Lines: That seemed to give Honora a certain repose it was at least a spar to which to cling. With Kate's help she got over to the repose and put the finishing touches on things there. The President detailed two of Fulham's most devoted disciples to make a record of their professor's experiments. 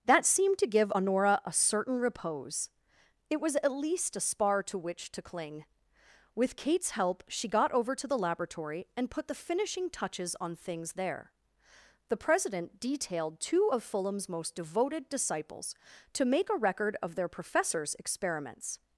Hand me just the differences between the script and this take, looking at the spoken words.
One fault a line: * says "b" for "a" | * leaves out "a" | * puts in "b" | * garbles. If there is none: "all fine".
* says "laboratory" for "repose"